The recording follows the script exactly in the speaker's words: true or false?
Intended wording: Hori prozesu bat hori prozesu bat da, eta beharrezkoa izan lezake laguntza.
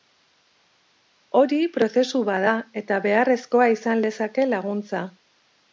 false